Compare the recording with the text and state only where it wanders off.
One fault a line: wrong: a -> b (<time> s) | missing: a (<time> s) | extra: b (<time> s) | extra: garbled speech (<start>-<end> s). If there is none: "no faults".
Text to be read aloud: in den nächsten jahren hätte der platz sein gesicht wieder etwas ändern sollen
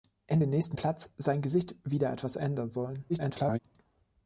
missing: jahren hätte der (0.8 s)
extra: garbled speech (3.1-3.6 s)